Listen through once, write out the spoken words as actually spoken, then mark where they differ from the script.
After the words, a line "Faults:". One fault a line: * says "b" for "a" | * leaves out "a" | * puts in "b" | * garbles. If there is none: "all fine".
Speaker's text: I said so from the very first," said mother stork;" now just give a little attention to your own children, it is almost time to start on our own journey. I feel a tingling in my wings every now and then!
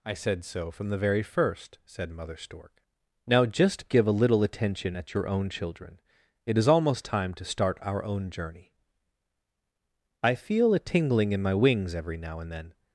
I said so from the very first," said mother stork;" now just give a little attention at your own children, it is almost time to start our own journey. I feel a tingling in my wings every now and then!
Faults:
* says "at" for "to"
* leaves out "on"